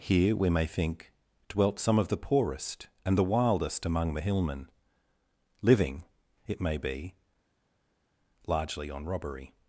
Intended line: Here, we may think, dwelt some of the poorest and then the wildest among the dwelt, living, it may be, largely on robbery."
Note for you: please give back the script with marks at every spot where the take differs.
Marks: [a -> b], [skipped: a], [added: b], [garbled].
Here, we may think, dwelt some of the poorest and [skipped: then] the wildest among the [dwelt, -> hillmen] living, it may be, largely on robbery."